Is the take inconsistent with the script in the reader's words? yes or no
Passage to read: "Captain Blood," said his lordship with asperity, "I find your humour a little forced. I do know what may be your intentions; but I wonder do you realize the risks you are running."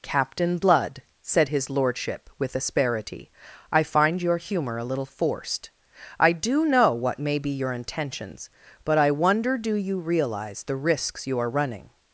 no